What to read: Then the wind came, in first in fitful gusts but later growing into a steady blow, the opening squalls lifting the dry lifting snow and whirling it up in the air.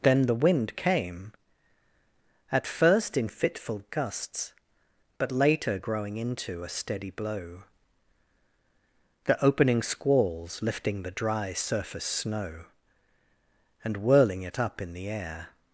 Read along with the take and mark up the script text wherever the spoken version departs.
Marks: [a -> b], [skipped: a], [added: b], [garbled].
Then the wind came, [in -> at] first in fitful gusts but later growing into a steady blow, the opening squalls lifting the dry [lifting -> surface] snow and whirling it up in the air.